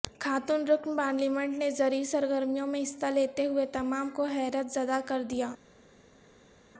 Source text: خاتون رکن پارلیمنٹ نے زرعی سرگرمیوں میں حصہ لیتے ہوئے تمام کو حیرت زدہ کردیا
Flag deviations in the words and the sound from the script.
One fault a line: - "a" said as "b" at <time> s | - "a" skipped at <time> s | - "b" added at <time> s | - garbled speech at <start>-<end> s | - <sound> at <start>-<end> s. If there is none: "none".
none